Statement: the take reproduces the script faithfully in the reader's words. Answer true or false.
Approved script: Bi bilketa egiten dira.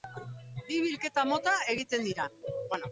false